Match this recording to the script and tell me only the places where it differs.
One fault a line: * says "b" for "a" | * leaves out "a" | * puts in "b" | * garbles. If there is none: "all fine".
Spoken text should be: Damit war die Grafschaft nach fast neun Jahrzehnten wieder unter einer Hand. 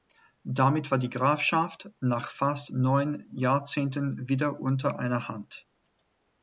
all fine